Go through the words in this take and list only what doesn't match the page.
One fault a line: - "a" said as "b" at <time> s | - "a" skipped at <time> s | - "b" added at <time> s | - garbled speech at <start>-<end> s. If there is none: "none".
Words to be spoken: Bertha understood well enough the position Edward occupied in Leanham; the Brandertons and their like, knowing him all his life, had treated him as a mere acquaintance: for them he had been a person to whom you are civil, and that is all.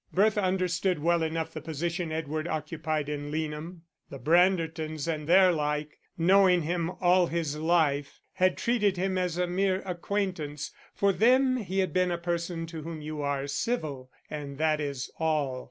none